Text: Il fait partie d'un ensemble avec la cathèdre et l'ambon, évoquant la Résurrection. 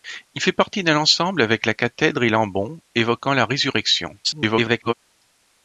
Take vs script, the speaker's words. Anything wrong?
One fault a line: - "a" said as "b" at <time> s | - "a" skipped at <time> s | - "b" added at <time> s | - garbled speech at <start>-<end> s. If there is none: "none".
- garbled speech at 4.2-4.9 s